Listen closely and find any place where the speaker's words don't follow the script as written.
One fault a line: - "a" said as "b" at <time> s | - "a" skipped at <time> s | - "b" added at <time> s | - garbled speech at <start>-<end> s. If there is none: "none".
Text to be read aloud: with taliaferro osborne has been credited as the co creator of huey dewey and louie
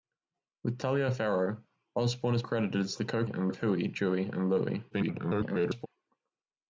- "been" skipped at 2.4 s
- "creator" said as "and" at 3.3 s
- garbled speech at 4.9-5.9 s